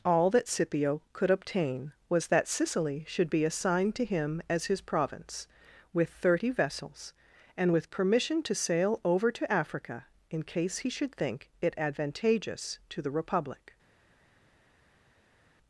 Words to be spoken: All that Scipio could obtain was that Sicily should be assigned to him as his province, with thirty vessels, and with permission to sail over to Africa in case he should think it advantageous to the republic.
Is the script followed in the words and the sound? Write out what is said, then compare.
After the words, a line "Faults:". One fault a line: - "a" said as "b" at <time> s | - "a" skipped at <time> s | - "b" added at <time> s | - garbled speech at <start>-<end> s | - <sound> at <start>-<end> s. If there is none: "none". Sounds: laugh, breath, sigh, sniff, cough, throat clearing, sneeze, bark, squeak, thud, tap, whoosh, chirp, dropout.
All that Scipio could obtain was that Sicily should be assigned to him as his province, with thirty vessels, and with permission to sail over to Africa in case he should think it advantageous to the republic.
Faults:
none